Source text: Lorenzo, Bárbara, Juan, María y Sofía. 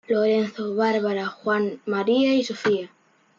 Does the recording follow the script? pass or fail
pass